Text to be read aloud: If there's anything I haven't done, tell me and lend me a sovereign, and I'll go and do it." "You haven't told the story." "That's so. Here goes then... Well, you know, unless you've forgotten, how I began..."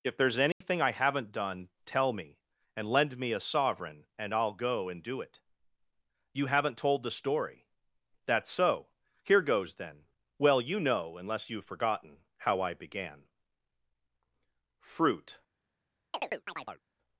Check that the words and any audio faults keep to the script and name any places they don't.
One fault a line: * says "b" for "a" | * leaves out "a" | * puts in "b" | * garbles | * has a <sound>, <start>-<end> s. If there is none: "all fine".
* has a dropout, 0.5-0.6 s
* puts in "Fruit"
* has a chirp, 16.1-16.8 s